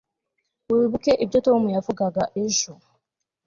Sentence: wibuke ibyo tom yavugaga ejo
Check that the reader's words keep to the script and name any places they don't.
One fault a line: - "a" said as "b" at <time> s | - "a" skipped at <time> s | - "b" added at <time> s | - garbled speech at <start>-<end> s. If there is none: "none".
none